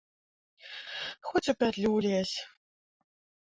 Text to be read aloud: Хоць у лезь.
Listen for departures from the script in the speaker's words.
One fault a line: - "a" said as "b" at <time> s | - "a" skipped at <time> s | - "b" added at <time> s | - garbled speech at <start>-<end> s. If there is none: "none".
- "пятлю" added at 1.6 s